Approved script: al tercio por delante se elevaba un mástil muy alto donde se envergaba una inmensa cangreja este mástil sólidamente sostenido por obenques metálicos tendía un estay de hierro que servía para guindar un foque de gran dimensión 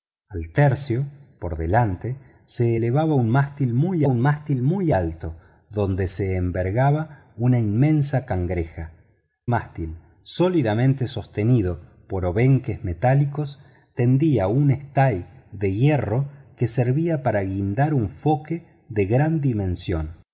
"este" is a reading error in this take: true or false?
true